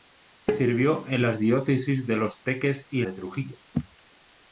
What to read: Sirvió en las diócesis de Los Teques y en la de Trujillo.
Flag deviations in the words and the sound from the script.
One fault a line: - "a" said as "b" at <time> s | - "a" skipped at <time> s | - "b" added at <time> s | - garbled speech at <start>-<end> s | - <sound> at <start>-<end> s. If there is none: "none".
- "en la" skipped at 3.0 s